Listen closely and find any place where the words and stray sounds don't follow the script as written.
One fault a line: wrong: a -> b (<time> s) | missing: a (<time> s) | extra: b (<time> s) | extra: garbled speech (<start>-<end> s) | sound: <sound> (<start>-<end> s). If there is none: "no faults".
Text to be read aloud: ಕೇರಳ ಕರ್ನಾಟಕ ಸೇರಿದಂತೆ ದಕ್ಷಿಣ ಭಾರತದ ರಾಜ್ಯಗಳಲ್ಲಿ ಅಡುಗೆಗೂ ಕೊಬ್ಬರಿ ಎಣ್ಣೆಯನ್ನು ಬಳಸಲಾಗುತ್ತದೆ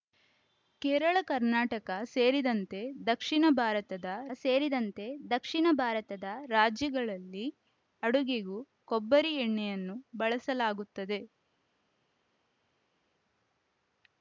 extra: ಸೇರಿದಂತೆ ದಕ್ಷಿಣ ಭಾರತದ (4.3 s)